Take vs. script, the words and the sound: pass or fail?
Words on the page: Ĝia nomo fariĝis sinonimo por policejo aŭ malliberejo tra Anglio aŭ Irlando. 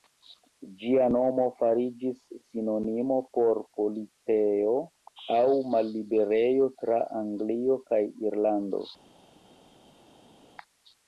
fail